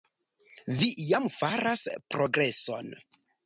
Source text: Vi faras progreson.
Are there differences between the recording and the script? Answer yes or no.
yes